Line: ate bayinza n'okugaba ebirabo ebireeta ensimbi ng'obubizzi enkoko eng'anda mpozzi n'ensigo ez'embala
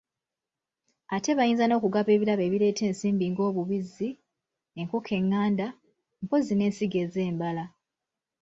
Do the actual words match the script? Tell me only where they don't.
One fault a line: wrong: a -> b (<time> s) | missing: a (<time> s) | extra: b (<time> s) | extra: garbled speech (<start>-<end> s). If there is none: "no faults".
no faults